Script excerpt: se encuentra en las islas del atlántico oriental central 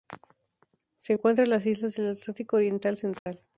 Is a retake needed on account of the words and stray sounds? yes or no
yes